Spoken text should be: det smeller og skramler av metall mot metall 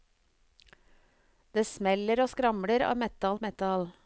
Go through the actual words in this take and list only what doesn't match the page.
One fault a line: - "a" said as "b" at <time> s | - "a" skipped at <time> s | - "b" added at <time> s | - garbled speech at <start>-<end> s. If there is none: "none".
- "mot" skipped at 3.4 s